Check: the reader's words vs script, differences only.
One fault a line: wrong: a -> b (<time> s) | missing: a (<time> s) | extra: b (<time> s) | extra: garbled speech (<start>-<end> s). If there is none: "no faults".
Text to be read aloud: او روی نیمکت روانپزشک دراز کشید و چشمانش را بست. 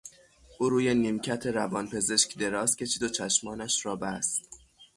no faults